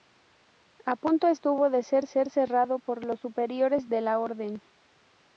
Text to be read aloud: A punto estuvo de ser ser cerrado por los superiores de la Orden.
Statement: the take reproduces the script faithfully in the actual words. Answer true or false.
true